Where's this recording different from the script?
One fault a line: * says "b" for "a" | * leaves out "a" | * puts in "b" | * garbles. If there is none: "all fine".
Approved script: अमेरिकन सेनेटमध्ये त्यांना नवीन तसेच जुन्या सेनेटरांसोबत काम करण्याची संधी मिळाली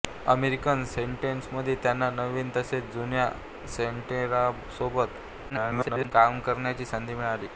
* garbles